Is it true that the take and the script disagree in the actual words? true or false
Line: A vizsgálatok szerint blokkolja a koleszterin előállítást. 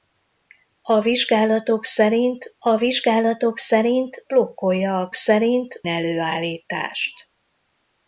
true